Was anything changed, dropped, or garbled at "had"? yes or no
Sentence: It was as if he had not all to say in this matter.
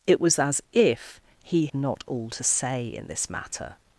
yes